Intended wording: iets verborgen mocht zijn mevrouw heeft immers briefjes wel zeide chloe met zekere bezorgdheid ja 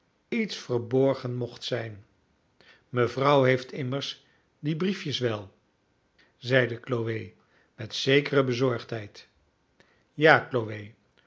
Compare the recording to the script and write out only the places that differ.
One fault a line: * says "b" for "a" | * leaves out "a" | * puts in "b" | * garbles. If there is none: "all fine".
* puts in "die"